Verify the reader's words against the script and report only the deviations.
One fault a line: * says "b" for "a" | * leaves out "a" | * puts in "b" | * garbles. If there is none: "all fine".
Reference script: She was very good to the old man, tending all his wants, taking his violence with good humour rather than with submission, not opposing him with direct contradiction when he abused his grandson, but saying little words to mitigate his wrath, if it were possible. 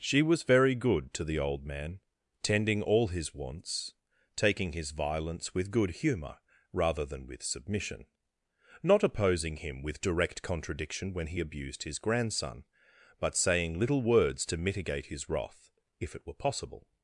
all fine